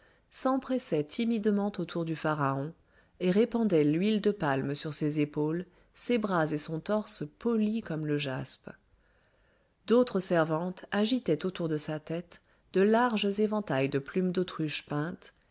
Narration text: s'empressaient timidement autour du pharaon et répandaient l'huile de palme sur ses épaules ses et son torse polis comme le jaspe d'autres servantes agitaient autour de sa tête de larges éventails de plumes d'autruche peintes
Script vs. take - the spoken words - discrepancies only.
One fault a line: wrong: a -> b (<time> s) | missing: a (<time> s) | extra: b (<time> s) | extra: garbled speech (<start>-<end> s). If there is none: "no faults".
extra: bras (6.2 s)